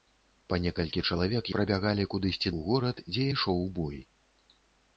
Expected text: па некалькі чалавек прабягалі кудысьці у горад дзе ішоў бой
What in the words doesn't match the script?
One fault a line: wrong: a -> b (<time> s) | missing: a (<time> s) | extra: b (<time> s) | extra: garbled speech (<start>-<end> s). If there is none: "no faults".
no faults